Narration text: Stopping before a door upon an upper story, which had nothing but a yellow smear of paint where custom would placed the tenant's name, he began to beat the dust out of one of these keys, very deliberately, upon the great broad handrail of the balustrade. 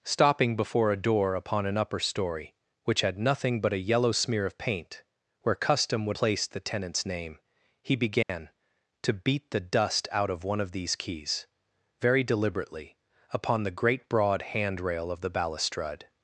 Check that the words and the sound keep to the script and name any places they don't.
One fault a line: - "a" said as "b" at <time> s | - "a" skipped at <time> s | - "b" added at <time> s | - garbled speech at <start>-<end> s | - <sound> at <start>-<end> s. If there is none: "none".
- dropout at 8.2-8.3 s